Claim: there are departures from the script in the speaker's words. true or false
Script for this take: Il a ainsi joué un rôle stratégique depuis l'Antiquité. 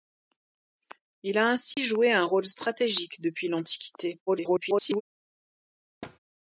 true